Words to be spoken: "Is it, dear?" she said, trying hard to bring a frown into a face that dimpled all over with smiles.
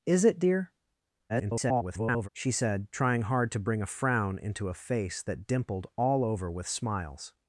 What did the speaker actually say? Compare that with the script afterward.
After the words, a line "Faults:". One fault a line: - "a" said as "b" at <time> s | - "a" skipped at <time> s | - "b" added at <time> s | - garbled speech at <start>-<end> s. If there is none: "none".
"Is it, dear?" [garbled] she said, trying hard to bring a frown into a face that dimpled all over with smiles.
Faults:
- garbled speech at 1.3-2.3 s